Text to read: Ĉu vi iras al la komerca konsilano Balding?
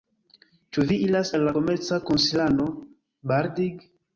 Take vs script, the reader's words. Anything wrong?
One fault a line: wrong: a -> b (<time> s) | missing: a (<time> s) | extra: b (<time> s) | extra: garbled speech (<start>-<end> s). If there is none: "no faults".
no faults